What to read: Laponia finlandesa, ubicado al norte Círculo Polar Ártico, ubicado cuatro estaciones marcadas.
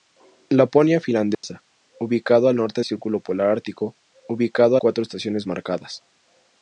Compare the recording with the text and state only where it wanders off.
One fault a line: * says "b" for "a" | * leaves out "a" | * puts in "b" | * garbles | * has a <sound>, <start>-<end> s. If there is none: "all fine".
* has a dropout, 1.3-1.4 s